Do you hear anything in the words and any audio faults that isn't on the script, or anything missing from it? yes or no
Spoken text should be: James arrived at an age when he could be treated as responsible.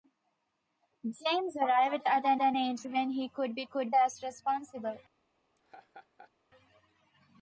yes